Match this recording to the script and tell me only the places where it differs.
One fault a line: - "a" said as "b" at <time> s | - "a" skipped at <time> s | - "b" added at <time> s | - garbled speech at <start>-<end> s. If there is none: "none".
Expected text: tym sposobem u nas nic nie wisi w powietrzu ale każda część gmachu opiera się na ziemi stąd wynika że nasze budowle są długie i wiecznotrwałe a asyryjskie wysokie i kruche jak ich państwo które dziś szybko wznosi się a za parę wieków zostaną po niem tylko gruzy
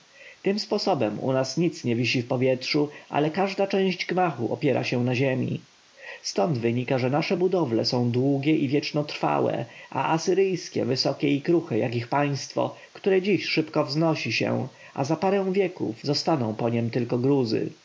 none